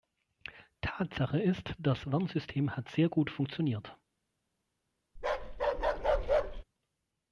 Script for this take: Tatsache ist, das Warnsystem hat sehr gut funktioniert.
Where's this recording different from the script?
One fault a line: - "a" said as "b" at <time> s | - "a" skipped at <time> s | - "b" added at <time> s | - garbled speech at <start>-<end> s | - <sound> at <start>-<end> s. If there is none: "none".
- bark at 5.2-6.6 s